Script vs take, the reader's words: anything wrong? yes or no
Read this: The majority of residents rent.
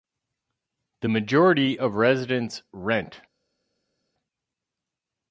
no